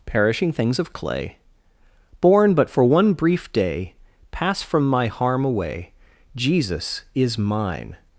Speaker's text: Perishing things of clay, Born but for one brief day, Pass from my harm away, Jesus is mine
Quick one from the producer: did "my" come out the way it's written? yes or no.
yes